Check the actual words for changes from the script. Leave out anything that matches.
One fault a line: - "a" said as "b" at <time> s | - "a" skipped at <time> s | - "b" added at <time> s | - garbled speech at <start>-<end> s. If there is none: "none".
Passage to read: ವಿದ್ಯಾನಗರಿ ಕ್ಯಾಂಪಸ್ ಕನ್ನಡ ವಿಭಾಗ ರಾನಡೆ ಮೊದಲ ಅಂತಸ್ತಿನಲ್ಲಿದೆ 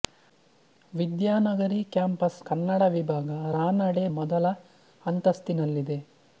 none